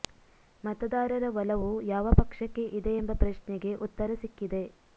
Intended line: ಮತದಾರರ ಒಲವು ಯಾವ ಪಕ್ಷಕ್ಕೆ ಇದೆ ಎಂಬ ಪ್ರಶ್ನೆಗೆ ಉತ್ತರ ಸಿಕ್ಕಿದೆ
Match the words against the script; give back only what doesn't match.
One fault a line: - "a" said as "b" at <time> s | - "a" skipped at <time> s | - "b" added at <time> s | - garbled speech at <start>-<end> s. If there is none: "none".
none